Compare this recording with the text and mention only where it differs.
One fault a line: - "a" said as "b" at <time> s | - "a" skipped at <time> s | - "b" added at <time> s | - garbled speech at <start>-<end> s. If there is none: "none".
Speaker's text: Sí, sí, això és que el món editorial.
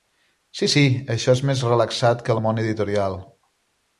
- "més relaxat" added at 1.5 s